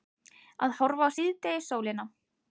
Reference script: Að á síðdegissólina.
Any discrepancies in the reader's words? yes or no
yes